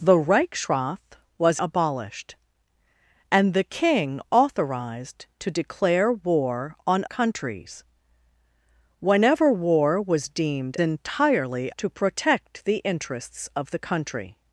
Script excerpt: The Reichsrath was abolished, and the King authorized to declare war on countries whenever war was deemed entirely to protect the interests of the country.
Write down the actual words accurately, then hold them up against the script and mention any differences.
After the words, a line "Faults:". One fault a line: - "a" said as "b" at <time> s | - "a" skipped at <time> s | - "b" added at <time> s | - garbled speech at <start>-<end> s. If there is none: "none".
The Reichsrath was abolished, and the King authorized to declare war on countries whenever war was deemed entirely to protect the interests of the country.
Faults:
none